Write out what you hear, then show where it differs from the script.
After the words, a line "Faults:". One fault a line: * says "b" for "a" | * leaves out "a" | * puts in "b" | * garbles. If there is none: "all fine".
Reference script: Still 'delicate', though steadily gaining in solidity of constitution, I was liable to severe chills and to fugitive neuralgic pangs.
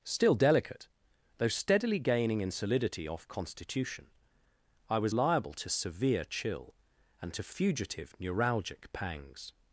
Still 'delicate', though steadily gaining in solidity off constitution, I was liable to severe chill and to fugitive neuralgic pangs.
Faults:
* says "off" for "of"
* says "chill" for "chills"